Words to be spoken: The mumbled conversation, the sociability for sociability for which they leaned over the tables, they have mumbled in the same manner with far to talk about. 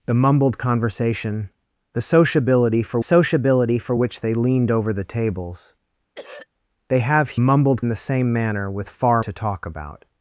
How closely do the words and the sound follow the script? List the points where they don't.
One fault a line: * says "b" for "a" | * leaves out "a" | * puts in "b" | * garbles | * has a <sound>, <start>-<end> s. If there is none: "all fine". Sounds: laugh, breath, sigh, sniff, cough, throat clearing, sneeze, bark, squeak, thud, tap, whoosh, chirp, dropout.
* has a throat clearing, 6.2-6.5 s